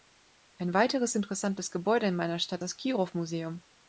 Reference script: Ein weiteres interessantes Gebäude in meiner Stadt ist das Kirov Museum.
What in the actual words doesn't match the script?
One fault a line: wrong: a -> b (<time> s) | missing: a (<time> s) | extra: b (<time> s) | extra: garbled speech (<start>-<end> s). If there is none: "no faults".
missing: ist (2.6 s)